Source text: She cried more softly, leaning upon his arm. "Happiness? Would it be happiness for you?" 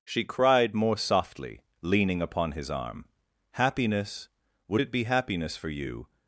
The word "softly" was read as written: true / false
true